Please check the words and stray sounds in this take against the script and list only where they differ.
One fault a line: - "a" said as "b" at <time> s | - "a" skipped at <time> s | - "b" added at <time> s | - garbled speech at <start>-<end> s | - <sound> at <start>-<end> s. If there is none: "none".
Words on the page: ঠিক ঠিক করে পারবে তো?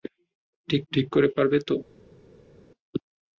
none